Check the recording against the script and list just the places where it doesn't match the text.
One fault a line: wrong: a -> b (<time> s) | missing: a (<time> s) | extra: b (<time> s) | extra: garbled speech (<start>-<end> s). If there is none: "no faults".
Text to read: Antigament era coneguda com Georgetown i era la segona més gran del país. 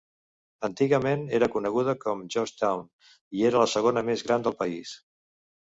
no faults